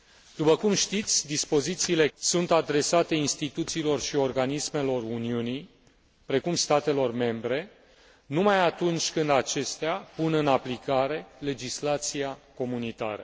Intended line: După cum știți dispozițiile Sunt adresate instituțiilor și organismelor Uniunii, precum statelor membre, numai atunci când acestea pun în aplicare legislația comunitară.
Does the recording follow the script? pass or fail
pass